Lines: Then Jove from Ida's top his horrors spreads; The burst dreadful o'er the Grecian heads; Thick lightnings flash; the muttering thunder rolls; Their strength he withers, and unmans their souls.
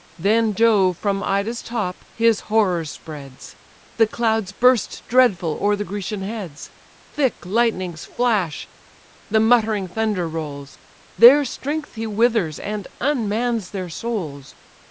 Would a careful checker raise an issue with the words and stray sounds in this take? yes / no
yes